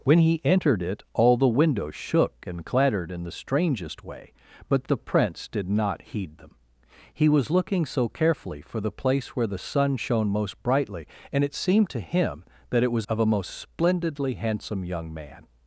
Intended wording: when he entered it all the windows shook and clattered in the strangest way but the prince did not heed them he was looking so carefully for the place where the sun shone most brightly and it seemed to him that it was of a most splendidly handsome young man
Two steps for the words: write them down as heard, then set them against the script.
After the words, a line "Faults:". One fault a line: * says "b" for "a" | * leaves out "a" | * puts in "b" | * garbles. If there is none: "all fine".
when he entered it all the windows shook and clattered in the strangest way but the prince did not heed them he was looking so carefully for the place where the sun shone most brightly and it seemed to him that it was of a most splendidly handsome young man
Faults:
all fine